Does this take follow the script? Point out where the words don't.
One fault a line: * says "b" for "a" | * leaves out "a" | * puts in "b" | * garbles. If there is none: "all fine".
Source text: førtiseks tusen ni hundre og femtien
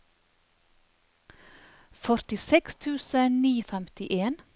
* leaves out "hundre"